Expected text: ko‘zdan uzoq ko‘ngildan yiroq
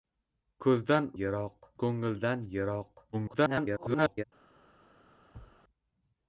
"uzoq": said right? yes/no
no